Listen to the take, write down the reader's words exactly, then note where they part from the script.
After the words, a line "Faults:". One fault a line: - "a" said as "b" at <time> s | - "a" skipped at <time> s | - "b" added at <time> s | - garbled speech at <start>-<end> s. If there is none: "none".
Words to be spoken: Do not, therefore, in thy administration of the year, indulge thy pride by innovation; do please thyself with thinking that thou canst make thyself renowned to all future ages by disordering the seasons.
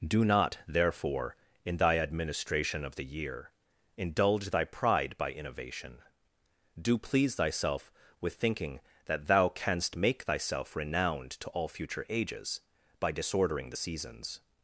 Do not, therefore, in thy administration of the year, indulge thy pride by innovation; do please thyself with thinking that thou canst make thyself renowned to all future ages by disordering the seasons.
Faults:
none